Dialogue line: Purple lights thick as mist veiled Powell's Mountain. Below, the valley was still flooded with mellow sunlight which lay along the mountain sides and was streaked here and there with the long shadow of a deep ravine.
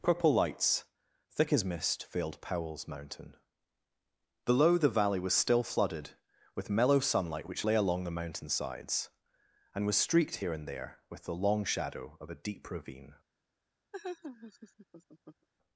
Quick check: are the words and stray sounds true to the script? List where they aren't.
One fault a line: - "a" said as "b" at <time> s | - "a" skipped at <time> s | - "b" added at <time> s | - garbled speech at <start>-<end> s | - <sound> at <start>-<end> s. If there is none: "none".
- laugh at 13.9-15.5 s